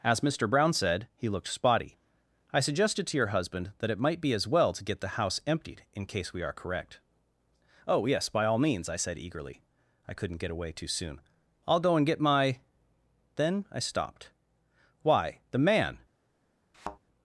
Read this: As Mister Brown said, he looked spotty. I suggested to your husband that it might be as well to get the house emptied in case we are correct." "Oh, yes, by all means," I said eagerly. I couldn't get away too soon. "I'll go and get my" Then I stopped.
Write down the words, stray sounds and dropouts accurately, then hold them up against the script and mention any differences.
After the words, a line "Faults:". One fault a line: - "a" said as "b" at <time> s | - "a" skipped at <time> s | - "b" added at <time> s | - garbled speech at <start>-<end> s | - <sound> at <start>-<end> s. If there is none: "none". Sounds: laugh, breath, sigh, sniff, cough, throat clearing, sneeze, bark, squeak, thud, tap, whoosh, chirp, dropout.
As Mister Brown said, he looked spotty. I suggested to your husband that it might be as well to get the house emptied in case we are correct." "Oh, yes, by all means," I said eagerly. I couldn't get away too soon. "I'll go and get my" Then I stopped. Why, the man
Faults:
- "Why the man" added at 15.0 s
- thud at 16.7-17.0 s